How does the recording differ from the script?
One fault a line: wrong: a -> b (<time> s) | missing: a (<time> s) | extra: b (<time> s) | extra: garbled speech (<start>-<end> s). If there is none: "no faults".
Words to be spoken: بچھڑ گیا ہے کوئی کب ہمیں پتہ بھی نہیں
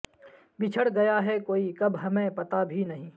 no faults